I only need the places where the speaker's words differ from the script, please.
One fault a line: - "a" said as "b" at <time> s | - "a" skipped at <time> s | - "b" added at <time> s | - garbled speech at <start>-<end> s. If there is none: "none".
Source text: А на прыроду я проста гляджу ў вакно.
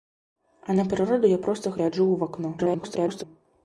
- garbled speech at 2.6-3.2 s